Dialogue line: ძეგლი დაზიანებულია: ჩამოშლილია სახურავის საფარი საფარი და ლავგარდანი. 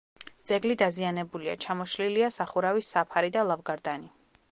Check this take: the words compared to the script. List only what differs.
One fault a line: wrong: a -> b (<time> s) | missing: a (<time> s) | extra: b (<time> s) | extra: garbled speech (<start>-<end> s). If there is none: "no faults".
missing: საფარი (3.3 s)